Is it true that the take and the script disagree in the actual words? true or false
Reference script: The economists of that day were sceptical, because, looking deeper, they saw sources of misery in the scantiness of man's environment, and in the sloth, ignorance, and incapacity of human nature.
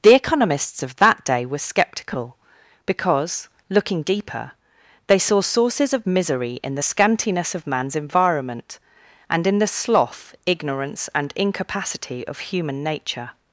false